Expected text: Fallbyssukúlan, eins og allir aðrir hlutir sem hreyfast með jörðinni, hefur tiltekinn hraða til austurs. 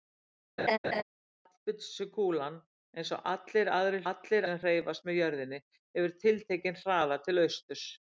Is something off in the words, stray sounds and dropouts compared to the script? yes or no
yes